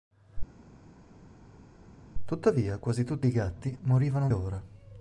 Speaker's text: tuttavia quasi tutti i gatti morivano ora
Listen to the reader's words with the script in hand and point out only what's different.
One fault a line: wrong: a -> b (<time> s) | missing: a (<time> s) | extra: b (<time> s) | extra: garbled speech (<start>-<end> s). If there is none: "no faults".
no faults